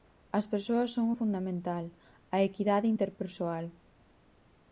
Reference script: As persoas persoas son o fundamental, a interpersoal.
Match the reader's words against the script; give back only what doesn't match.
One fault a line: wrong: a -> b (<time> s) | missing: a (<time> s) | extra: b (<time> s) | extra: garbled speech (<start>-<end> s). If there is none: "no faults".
missing: persoas (0.9 s)
extra: equidade (2.5 s)